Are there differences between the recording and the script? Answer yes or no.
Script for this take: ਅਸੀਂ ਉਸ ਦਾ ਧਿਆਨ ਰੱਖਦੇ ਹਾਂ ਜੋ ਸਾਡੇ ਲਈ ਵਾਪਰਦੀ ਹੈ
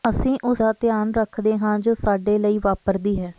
no